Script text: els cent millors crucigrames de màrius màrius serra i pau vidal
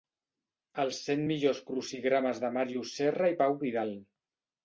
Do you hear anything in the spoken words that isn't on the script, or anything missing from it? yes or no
yes